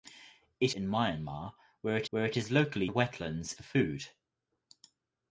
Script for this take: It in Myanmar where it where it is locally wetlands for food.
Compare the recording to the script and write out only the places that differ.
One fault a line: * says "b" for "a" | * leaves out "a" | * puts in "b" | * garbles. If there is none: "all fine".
all fine